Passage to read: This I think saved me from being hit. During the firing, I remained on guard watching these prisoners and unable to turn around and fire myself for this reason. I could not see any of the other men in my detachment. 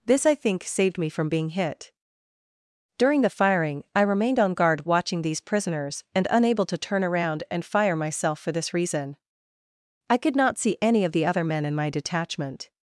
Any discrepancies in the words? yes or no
no